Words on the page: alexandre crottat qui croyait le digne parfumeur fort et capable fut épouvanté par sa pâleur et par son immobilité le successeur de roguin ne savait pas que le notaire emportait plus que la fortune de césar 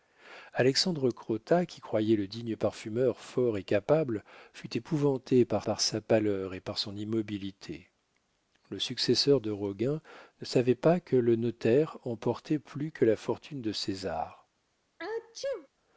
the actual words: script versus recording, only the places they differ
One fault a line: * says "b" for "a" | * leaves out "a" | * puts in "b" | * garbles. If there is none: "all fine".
* puts in "par"